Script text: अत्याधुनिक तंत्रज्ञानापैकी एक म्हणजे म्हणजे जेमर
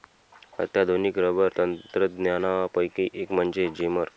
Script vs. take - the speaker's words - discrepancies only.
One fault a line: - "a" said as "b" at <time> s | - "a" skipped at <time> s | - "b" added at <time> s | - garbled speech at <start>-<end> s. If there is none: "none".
- "रबर" added at 1.2 s
- "म्हणजे" skipped at 3.7 s